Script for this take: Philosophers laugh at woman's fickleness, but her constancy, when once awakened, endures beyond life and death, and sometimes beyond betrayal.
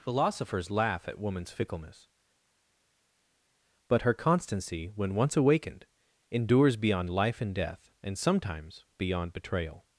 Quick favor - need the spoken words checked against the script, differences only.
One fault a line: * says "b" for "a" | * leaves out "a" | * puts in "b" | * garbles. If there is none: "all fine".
all fine